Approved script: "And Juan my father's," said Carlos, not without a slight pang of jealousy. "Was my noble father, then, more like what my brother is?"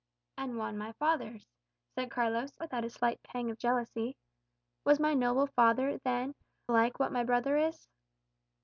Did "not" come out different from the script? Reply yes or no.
yes